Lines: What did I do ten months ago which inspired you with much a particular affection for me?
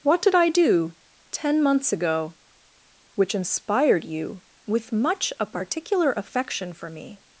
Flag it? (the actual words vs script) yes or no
no